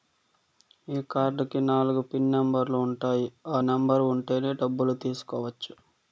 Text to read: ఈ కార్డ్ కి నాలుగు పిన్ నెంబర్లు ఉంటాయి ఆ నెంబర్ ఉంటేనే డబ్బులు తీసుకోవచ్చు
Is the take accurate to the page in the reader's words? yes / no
yes